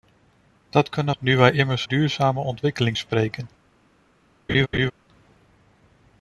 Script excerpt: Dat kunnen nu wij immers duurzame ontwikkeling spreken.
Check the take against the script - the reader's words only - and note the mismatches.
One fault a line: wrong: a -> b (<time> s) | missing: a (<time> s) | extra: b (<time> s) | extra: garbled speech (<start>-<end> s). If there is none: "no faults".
no faults